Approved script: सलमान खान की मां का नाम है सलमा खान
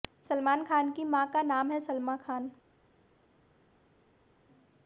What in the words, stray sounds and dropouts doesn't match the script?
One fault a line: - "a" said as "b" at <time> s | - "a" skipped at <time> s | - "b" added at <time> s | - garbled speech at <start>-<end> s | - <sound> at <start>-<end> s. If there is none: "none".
none